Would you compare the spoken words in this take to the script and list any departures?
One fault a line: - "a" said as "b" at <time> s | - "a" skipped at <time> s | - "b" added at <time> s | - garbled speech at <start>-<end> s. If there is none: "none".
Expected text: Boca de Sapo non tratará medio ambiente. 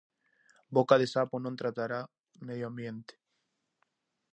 none